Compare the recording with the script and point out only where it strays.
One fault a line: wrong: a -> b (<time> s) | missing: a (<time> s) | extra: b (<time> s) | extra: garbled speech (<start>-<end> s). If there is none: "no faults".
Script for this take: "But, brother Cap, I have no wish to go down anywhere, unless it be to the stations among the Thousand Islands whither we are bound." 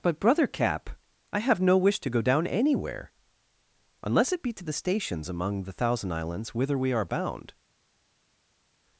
no faults